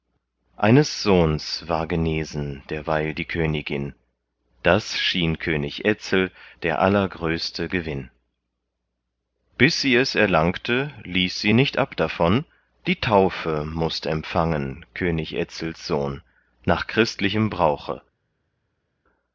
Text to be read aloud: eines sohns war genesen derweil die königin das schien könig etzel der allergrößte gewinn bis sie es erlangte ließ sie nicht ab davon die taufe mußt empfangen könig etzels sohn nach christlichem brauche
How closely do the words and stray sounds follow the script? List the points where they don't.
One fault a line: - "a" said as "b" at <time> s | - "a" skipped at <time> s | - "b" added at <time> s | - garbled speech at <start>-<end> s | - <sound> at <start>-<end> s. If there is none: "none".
none